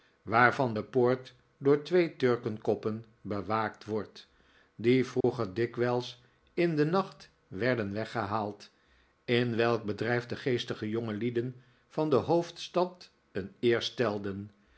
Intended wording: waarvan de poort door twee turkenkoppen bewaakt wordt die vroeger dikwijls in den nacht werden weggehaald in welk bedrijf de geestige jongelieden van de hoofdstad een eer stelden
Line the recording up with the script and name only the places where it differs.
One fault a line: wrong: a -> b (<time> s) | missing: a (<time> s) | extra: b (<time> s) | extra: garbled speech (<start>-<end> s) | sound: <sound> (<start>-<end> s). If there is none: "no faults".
sound: dropout (5.2-5.2 s)